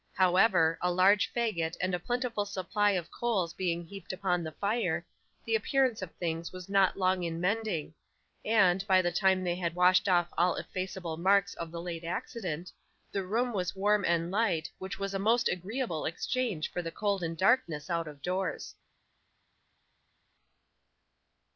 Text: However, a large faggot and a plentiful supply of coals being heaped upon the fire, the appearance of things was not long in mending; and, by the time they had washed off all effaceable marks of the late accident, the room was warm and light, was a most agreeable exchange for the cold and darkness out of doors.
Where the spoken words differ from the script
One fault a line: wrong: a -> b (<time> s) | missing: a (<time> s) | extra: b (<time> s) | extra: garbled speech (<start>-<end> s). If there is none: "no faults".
extra: which (14.8 s)